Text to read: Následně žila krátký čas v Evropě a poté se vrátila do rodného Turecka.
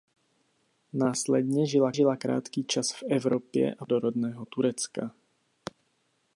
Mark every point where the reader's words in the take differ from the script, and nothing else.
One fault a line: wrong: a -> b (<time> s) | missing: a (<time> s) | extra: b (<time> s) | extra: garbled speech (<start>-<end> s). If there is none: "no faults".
extra: žila (1.9 s)
missing: poté se vrátila (3.9 s)